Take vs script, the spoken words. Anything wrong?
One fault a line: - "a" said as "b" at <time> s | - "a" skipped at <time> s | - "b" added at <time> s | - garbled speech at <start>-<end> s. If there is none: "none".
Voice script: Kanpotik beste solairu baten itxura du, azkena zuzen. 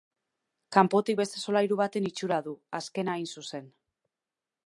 - "hain" added at 3.2 s